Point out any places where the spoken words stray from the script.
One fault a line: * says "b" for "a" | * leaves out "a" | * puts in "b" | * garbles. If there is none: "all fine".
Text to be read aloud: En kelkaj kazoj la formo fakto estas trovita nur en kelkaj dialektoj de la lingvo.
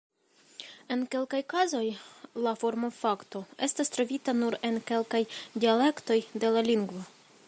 all fine